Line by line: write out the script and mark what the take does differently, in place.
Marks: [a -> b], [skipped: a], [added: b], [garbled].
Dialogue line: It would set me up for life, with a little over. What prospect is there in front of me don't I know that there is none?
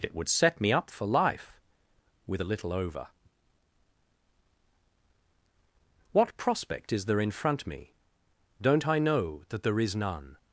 It would set me up for life, with a little over. What prospect is there in front [skipped: of] me don't I know that there is none?